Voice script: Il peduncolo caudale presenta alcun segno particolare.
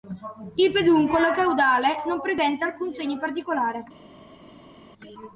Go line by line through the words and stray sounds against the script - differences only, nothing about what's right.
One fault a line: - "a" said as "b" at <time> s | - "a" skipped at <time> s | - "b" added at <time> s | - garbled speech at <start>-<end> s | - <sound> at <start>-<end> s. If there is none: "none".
- "non" added at 2.1 s